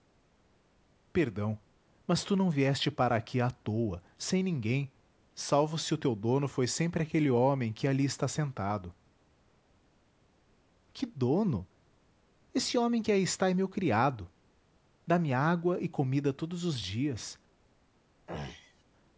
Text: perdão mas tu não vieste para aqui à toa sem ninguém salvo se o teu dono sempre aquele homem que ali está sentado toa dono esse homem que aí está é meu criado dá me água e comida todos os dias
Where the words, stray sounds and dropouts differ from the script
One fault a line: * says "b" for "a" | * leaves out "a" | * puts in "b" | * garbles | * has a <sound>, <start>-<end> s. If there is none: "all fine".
* puts in "foi"
* says "que" for "toa"
* has a throat clearing, 18.3-18.8 s